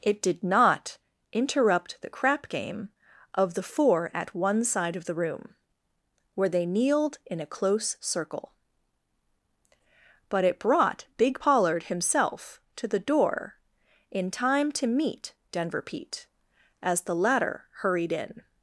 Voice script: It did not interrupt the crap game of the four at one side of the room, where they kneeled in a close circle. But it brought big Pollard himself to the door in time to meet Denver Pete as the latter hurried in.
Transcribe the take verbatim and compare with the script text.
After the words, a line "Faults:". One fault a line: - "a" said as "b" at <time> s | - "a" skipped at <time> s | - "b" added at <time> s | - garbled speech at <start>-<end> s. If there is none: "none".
It did not interrupt the crap game of the four at one side of the room, where they kneeled in a close circle. But it brought big Pollard himself to the door in time to meet Denver Pete as the latter hurried in.
Faults:
none